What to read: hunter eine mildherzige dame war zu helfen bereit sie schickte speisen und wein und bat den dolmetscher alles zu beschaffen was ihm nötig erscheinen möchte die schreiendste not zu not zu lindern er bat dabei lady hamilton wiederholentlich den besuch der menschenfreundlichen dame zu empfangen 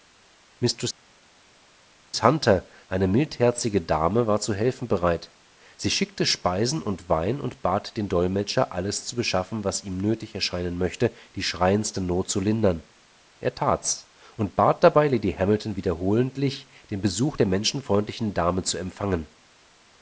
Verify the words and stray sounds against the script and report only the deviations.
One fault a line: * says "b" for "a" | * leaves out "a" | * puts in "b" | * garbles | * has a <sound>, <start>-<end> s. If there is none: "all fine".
* says "lindern er tat's und" for "not zu lindern er"